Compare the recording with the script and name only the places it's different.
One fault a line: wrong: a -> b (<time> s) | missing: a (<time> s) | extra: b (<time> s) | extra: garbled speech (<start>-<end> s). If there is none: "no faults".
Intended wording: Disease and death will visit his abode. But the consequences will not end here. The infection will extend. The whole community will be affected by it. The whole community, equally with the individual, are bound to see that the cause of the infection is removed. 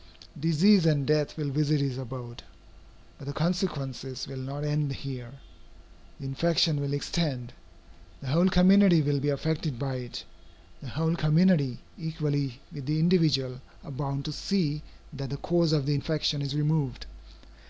no faults